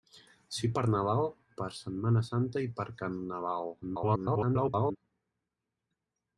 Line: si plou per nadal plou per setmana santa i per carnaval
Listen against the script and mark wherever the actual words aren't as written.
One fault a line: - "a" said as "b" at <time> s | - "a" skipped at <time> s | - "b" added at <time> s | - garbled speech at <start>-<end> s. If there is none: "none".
- "plou" skipped at 0.7 s
- "plou" skipped at 1.3 s
- garbled speech at 3.8-5.0 s